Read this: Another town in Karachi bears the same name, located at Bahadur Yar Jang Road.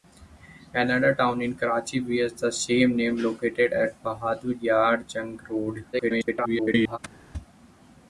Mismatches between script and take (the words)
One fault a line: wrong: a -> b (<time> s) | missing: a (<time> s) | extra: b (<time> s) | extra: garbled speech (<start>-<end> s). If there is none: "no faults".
extra: garbled speech (5.9-7.0 s)